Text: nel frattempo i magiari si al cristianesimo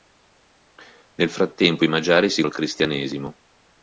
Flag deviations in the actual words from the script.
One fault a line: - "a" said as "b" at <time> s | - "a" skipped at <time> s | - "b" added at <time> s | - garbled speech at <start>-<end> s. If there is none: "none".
none